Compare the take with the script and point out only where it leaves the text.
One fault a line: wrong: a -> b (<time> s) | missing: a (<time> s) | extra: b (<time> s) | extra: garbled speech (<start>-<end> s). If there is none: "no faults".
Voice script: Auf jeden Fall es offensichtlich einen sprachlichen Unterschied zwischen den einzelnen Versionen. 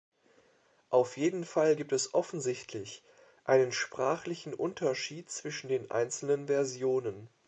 extra: gibt (1.7 s)